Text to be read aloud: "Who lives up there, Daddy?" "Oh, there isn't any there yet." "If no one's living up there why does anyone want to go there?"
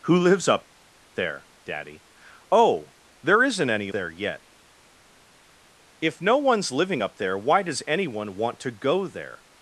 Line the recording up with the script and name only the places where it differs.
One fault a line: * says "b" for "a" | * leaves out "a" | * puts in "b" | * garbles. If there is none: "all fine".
all fine